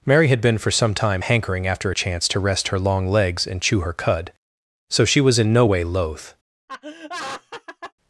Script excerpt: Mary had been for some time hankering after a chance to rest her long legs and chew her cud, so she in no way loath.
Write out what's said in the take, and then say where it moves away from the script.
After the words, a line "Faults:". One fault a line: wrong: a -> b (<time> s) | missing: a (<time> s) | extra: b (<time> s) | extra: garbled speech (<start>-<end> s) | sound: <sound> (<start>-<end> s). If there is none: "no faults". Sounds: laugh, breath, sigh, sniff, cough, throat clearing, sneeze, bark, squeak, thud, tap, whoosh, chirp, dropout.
Mary had been for some time hankering after a chance to rest her long legs and chew her cud, so she was in no way loath.
Faults:
extra: was (5.2 s)
sound: laugh (6.7-7.9 s)